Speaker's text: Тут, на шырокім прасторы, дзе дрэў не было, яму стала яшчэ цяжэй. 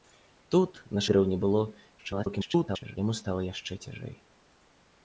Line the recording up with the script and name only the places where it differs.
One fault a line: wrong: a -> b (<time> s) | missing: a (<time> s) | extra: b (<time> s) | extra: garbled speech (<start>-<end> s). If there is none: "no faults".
missing: шырокім прасторы дзе (1.0 s)
extra: garbled speech (2.0-3.0 s)